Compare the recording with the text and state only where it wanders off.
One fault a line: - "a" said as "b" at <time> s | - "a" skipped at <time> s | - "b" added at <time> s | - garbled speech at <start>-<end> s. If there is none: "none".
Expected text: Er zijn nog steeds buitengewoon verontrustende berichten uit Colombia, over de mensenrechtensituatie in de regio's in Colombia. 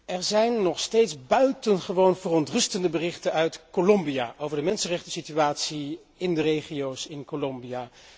none